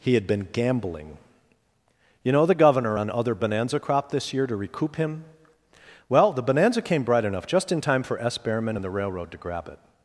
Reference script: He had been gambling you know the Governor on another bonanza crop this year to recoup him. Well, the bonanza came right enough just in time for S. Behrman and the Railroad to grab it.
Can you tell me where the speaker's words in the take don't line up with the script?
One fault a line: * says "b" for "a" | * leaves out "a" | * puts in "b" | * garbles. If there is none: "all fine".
* says "other" for "another"
* says "bright" for "right"